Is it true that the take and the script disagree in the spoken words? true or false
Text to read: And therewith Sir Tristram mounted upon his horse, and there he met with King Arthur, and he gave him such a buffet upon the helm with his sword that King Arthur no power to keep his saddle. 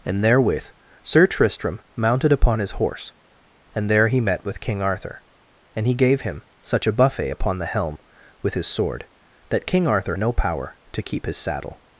false